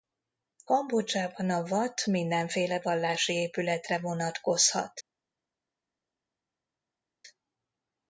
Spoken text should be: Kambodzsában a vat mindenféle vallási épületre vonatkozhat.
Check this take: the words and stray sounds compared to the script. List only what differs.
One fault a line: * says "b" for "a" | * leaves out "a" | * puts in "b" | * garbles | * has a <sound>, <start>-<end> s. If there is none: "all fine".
all fine